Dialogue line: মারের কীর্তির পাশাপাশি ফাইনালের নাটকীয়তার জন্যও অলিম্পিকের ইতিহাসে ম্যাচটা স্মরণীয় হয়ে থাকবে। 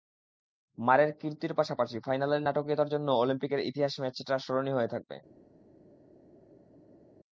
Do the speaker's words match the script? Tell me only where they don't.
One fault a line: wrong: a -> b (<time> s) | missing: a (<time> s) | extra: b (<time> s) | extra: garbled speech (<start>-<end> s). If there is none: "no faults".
no faults